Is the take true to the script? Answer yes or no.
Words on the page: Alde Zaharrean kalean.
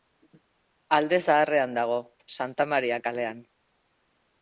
no